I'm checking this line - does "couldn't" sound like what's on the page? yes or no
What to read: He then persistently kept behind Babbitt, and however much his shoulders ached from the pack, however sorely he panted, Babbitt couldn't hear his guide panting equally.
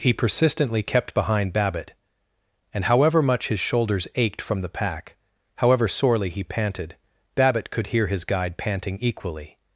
no